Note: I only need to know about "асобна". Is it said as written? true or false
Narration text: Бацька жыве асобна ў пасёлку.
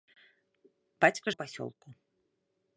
false